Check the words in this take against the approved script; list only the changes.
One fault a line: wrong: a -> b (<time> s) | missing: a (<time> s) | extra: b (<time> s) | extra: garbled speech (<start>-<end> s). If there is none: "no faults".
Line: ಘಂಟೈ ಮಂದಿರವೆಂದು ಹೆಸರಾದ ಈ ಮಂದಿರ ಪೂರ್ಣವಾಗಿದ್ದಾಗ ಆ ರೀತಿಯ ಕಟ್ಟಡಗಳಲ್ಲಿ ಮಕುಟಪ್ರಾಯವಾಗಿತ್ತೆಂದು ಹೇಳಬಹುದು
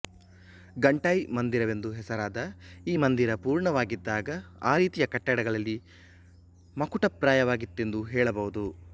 no faults